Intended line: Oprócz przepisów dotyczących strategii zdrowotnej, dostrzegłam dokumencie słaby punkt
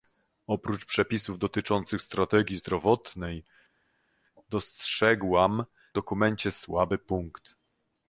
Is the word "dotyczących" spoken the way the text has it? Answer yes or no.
yes